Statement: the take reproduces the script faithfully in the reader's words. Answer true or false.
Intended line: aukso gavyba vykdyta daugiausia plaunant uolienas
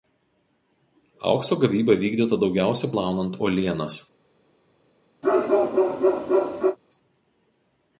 true